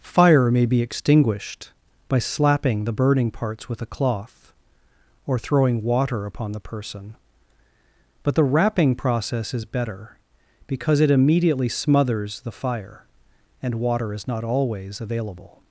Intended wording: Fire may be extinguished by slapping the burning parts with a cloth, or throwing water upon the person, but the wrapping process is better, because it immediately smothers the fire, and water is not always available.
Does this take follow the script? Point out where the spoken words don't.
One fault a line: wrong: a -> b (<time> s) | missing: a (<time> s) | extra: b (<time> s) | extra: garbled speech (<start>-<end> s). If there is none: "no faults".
no faults